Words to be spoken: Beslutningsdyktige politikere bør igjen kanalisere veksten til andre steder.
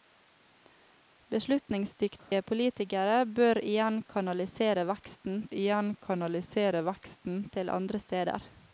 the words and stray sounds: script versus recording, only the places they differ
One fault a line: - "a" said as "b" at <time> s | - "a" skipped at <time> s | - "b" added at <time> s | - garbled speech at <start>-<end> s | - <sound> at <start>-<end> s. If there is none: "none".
- dropout at 2.2-2.3 s
- "igjen kanalisere veksten" added at 5.5 s